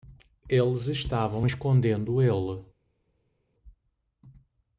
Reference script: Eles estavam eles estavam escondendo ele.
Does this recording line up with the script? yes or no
no